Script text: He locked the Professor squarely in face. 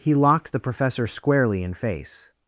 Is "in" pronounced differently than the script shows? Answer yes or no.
no